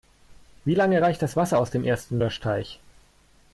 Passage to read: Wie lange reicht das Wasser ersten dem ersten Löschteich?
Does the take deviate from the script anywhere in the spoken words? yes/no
yes